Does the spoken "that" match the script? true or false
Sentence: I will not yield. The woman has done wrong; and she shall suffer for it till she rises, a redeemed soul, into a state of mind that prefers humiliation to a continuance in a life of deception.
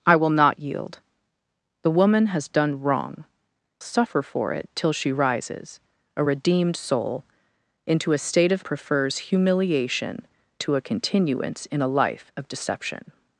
false